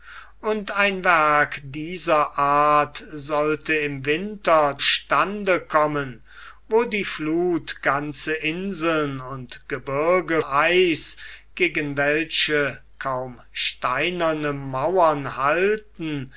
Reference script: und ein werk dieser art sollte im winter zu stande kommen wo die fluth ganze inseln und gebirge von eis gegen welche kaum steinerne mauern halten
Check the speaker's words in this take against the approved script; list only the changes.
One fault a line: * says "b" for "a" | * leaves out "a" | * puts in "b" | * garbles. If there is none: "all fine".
* leaves out "zu"
* leaves out "von"